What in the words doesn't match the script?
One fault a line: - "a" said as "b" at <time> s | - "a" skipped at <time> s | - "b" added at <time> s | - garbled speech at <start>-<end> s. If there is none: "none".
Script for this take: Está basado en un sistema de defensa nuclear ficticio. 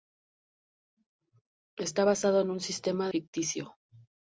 - "de defensa nuclear" skipped at 3.1 s